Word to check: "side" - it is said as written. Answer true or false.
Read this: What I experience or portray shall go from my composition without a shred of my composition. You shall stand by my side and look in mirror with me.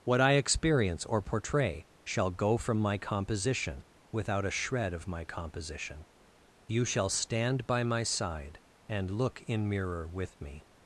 true